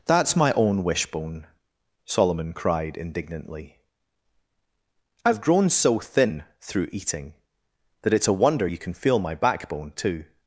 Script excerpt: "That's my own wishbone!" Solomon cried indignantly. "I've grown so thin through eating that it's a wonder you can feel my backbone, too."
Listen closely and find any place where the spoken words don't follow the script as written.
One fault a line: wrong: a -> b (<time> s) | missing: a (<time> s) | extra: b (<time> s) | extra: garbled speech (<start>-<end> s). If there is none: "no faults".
no faults